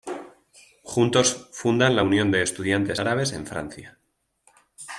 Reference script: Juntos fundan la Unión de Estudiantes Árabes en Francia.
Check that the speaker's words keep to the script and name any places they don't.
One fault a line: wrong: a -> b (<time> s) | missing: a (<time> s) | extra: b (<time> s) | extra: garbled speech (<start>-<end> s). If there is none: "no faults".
no faults